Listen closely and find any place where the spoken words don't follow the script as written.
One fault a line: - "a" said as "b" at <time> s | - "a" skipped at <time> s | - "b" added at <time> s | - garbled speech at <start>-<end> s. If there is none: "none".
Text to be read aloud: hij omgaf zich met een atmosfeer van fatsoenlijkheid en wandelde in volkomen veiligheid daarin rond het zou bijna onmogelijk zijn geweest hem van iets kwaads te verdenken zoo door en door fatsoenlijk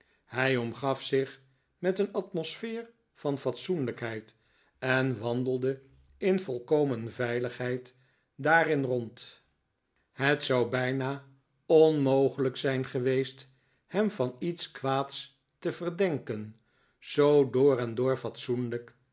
none